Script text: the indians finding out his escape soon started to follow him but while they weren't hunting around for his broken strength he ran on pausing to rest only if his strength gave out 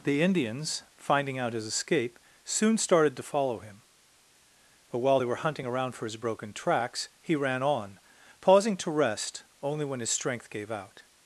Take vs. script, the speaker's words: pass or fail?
fail